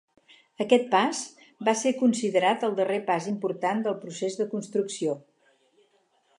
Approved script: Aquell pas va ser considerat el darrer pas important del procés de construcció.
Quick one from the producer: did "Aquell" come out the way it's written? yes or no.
no